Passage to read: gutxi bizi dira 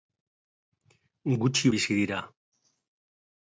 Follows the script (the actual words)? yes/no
yes